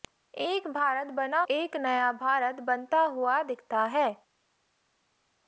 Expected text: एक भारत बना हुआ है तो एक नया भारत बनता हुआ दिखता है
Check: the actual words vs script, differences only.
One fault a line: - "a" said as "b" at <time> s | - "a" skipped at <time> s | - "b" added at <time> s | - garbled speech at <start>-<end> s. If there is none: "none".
- "हुआ है तो" skipped at 1.4 s